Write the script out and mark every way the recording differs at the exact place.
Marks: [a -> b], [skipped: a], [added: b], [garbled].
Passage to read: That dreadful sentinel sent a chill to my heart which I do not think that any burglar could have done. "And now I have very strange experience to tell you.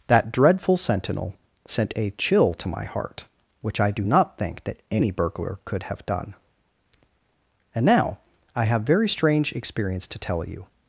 That dreadful sentinel sent a chill to my heart which I do not think that any burglar could have done. "And now I have very strange experience to tell you.